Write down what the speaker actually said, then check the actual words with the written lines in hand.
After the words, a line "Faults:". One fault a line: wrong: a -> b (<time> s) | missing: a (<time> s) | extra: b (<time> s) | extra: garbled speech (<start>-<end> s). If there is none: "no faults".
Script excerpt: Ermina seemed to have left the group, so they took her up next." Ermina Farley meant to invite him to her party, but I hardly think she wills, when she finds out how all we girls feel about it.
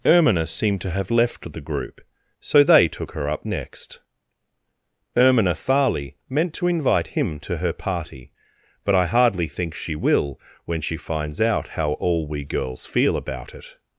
Ermina seemed to have left the group, so they took her up next." Ermina Farley meant to invite him to her party, but I hardly think she will, when she finds out how all we girls feel about it.
Faults:
wrong: wills -> will (10.0 s)